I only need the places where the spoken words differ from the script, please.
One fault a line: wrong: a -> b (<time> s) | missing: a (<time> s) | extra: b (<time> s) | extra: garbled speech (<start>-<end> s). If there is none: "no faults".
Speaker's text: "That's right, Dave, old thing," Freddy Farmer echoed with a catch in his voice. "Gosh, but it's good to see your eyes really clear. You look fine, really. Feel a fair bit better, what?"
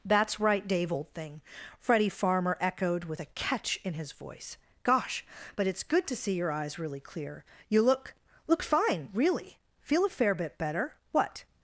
extra: look (8.5 s)